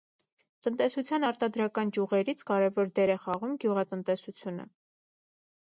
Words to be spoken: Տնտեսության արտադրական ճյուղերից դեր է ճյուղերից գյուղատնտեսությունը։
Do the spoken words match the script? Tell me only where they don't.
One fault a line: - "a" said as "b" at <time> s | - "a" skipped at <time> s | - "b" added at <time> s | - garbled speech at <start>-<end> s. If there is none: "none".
- "կարևոր" added at 2.5 s
- "ճյուղերից" said as "խաղում" at 3.3 s